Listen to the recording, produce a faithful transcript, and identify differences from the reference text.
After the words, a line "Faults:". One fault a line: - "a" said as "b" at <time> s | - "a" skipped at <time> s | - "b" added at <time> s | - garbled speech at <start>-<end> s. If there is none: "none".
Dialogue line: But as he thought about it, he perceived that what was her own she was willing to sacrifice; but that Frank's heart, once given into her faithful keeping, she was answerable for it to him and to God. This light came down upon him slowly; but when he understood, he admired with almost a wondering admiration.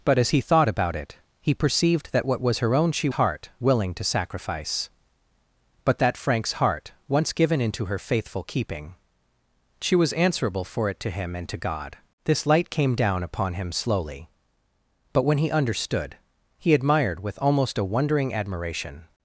But as he thought about it, he perceived that what was her own she heart willing to sacrifice; but that Frank's heart, once given into her faithful keeping, she was answerable for it to him and to God. This light came down upon him slowly; but when he understood, he admired with almost a wondering admiration.
Faults:
- "was" said as "heart" at 3.1 s